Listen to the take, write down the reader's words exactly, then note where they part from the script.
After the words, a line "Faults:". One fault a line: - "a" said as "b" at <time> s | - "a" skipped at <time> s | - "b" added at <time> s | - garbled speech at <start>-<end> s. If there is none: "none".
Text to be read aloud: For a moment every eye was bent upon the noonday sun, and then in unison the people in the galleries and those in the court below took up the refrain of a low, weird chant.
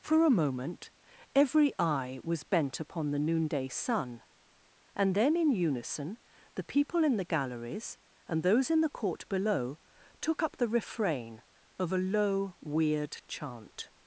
For a moment every eye was bent upon the noonday sun, and then in unison the people in the galleries and those in the court below took up the refrain of a low, weird chant.
Faults:
none